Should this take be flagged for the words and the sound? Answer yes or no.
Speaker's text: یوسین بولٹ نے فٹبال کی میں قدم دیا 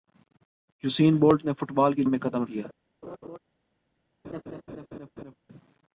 yes